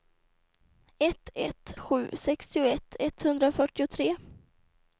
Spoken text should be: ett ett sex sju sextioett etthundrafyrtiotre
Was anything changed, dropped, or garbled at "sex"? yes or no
yes